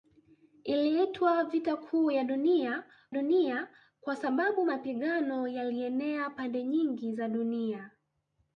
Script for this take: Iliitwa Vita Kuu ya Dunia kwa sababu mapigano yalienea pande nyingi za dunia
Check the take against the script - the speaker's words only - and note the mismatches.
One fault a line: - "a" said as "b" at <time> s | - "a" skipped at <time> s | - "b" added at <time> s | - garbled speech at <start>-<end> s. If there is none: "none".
- "Dunia" added at 3.1 s